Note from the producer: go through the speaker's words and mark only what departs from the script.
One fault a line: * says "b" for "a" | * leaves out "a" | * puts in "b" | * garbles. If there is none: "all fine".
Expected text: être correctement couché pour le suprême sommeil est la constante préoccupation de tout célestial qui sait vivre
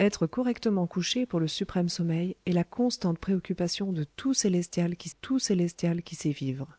* puts in "tout célestial qui"